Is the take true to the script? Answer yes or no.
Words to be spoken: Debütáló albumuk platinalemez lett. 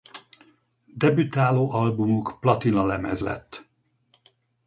yes